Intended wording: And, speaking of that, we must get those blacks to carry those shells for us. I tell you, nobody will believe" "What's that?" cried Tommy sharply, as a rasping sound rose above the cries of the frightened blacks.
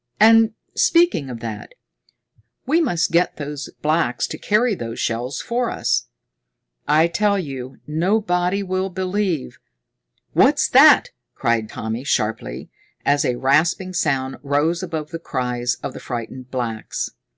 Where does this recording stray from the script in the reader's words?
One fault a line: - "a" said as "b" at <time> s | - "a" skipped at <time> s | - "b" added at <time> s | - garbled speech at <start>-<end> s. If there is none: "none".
none